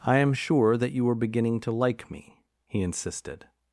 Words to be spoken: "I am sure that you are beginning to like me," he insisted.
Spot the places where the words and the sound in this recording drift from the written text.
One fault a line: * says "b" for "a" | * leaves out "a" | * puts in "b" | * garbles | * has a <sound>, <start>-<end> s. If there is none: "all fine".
all fine